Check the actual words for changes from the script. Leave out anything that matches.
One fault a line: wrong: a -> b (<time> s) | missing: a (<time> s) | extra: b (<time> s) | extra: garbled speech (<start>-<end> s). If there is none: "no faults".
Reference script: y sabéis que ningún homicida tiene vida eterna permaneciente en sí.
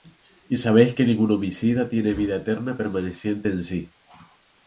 no faults